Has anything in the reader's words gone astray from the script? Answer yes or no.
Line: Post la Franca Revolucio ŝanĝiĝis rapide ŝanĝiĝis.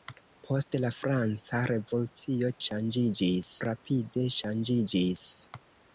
no